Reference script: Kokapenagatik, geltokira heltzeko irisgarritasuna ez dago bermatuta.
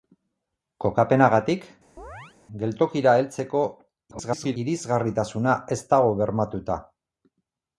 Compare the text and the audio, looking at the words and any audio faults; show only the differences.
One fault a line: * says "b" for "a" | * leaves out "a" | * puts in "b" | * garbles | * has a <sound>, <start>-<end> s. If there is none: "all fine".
* has a chirp, 2.0-2.4 s
* garbles